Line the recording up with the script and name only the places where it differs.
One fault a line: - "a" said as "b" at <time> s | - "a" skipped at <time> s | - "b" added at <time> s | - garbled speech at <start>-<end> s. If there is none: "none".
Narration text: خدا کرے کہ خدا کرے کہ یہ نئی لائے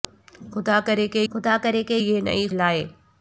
none